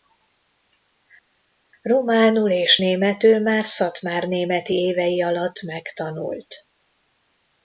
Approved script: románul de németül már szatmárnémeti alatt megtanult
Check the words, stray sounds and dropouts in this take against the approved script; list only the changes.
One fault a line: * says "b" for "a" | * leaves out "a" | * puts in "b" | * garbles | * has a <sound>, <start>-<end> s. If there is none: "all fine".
* says "és" for "de"
* puts in "évei"